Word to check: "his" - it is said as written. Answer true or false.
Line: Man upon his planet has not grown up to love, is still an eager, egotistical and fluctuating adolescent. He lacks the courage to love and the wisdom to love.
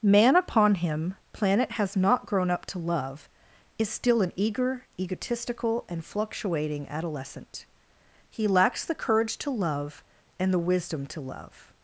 false